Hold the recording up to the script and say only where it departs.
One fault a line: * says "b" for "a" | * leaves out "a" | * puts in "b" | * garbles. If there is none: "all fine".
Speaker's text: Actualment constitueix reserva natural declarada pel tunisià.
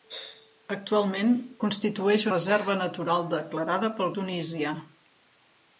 all fine